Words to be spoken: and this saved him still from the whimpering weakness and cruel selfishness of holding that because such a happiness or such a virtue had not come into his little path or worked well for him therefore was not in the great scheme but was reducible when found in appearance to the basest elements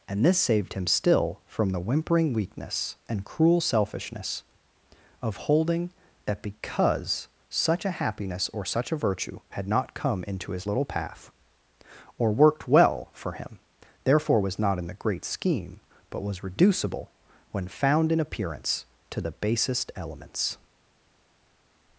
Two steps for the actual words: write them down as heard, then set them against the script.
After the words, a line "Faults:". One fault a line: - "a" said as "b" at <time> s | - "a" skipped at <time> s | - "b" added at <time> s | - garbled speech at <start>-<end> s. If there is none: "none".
and this saved him still from the whimpering weakness and cruel selfishness of holding that because such a happiness or such a virtue had not come into his little path or worked well for him therefore was not in the great scheme but was reducible when found in appearance to the basest elements
Faults:
none